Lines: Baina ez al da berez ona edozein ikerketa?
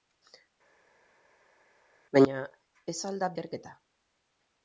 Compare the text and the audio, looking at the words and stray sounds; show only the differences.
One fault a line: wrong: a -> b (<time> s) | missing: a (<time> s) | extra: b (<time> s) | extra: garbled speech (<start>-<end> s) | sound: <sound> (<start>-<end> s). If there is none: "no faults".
missing: berez ona edozein (3.3 s)